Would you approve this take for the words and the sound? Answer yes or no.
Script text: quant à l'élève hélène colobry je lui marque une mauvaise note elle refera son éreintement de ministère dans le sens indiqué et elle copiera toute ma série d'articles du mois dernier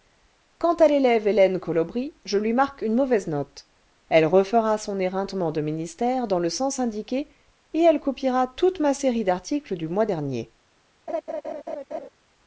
no